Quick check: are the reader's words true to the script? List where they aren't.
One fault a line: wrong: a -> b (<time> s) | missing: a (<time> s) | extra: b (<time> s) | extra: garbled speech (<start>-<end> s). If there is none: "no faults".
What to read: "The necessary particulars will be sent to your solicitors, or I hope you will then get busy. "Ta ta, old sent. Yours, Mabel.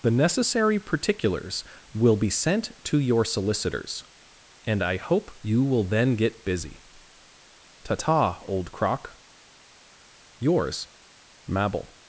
wrong: or -> and (4.7 s)
wrong: sent -> crock (8.7 s)